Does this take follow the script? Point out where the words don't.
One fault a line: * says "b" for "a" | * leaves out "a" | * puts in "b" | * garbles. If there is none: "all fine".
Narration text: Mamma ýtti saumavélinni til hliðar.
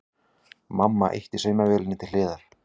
all fine